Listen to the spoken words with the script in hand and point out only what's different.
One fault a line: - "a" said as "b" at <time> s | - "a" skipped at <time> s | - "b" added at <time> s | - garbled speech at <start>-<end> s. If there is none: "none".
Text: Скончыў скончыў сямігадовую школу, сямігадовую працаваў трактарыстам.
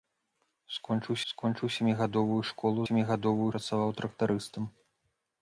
none